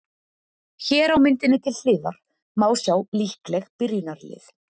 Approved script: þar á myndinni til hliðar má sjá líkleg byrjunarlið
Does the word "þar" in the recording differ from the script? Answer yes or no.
yes